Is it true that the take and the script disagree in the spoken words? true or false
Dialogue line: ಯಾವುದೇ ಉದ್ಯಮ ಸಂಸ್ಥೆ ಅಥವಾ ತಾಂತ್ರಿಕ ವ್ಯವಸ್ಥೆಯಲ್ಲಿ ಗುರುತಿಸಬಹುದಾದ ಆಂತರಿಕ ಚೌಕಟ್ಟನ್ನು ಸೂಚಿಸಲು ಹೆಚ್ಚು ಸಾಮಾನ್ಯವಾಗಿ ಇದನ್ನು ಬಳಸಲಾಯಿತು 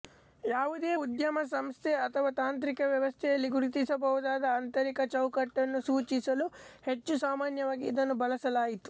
false